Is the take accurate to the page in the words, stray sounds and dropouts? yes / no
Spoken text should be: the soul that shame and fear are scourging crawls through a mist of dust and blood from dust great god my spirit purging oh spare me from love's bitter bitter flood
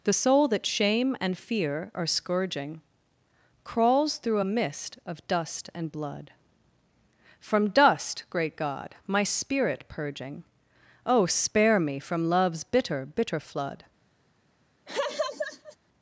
no